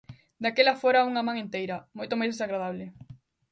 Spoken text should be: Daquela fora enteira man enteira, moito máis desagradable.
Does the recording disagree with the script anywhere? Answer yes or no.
yes